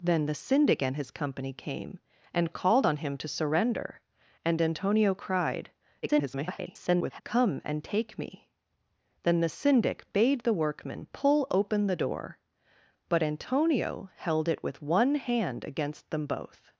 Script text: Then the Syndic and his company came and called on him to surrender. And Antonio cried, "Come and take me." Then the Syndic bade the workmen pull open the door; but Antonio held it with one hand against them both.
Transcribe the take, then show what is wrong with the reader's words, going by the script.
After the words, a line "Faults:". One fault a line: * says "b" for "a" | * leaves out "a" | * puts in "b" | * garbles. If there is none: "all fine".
Then the Syndic and his company came and called on him to surrender. And Antonio cried, [garbled] "Come and take me." Then the Syndic bade the workmen pull open the door; but Antonio held it with one hand against them both.
Faults:
* garbles